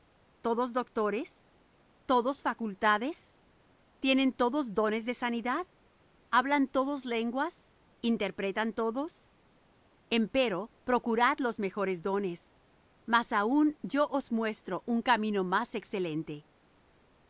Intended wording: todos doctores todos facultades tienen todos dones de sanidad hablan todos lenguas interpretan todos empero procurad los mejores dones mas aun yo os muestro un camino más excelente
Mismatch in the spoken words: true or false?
false